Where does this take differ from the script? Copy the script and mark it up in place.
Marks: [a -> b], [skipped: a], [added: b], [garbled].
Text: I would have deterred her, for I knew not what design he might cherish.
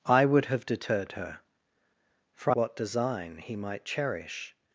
I would have deterred her, for [skipped: I knew not] what design he might cherish.